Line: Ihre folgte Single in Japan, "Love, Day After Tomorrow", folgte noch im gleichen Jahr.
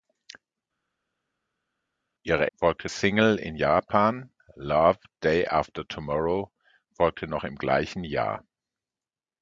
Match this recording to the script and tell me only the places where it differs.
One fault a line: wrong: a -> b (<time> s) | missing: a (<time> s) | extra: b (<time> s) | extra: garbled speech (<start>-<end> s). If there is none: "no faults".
no faults